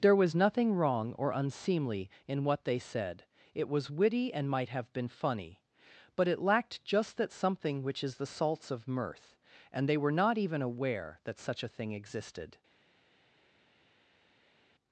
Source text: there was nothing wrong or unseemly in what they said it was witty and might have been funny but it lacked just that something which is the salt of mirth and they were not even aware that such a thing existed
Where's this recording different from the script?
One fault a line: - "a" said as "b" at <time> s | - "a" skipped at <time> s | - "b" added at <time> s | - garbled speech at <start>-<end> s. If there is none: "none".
- "salt" said as "salts" at 8.2 s